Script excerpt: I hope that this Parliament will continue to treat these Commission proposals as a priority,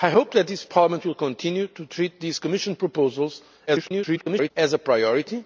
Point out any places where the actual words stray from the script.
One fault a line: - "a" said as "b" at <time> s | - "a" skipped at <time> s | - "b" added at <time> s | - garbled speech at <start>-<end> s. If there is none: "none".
- garbled speech at 3.7-4.5 s